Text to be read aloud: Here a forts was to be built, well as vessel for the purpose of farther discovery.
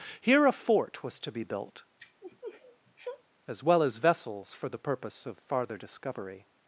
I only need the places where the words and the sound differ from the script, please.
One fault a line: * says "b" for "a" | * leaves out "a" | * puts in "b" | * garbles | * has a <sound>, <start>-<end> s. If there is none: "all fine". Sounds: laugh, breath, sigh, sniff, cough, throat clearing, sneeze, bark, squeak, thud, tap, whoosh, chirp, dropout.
* says "fort" for "forts"
* has a sniff, 2.0-3.2 s
* puts in "as"
* says "vessels" for "vessel"